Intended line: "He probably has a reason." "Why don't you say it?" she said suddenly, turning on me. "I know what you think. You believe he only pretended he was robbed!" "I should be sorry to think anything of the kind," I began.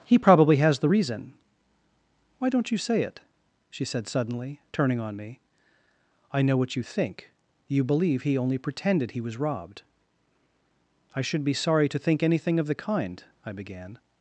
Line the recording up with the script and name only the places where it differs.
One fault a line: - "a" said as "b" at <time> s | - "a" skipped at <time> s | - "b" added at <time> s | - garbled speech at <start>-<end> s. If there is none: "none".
- "a" said as "the" at 0.8 s